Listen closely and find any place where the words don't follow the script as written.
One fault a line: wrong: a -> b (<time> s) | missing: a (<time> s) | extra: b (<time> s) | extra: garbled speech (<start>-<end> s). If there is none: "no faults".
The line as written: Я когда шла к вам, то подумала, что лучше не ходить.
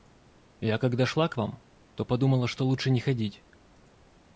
no faults